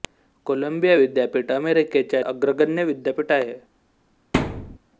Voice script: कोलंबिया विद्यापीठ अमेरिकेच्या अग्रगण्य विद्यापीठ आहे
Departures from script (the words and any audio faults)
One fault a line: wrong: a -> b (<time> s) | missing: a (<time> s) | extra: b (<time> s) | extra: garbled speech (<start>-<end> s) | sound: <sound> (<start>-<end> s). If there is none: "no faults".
sound: thud (4.3-4.8 s)